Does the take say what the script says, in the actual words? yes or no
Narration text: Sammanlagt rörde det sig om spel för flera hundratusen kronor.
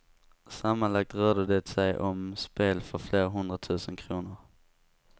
yes